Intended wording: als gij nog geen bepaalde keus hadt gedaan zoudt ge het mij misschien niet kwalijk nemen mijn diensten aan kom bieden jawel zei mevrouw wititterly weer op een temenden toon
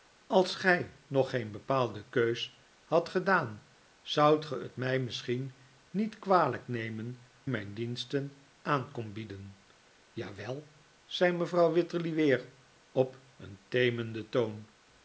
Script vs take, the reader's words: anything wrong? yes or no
no